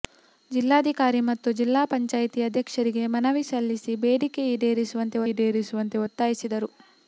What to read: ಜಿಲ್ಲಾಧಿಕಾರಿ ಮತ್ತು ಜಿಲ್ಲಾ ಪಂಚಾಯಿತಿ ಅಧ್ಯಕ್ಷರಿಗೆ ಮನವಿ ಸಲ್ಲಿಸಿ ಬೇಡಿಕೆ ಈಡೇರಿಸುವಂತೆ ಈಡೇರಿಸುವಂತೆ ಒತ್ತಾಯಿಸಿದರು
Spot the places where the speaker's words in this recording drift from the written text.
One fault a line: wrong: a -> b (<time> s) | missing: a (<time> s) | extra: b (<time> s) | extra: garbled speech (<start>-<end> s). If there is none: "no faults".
no faults